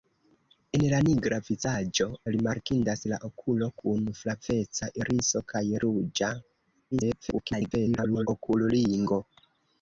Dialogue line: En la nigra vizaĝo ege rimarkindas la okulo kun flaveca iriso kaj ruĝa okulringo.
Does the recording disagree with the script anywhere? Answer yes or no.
yes